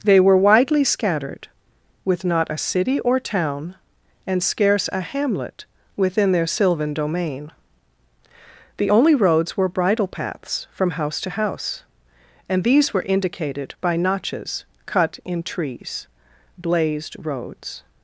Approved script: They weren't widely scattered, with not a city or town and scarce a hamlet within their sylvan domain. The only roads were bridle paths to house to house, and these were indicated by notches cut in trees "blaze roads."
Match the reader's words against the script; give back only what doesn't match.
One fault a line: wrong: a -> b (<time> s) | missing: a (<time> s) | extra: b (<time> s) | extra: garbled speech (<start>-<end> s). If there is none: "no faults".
wrong: weren't -> were (0.2 s)
wrong: to -> from (10.7 s)
wrong: blaze -> blazed (16.6 s)